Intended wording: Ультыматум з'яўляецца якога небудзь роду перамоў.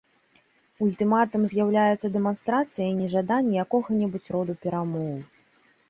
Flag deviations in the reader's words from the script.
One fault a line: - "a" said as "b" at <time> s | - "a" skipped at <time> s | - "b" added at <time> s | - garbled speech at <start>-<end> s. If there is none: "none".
- "дэманстрацыяй нежадання" added at 2.2 s